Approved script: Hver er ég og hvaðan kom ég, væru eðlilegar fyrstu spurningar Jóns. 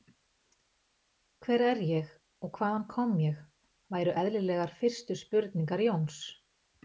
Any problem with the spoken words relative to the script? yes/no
no